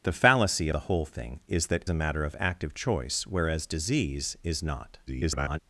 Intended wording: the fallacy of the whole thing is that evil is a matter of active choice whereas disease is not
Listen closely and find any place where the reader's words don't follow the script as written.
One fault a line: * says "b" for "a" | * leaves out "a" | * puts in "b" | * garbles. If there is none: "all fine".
* leaves out "of"
* leaves out "evil is"
* garbles